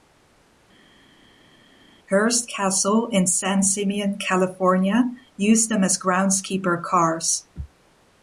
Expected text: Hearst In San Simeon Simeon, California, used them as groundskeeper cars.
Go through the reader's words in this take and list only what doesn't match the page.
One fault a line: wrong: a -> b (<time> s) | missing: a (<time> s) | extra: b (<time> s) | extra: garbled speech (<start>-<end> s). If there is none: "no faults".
extra: Castle (2.5 s)
missing: Simeon (4.2 s)